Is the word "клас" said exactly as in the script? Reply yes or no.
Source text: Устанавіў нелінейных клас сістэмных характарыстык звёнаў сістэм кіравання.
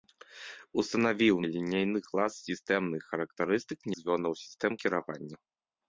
yes